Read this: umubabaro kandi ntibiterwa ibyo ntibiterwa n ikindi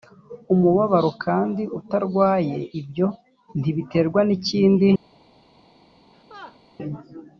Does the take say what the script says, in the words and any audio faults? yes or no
no